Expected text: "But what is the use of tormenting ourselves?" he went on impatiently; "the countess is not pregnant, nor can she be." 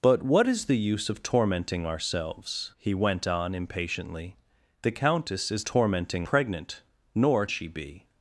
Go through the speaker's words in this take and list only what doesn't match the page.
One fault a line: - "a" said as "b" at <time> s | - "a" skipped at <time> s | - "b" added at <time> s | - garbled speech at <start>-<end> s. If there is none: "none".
- "not" said as "tormenting" at 5.6 s
- "can" skipped at 7.5 s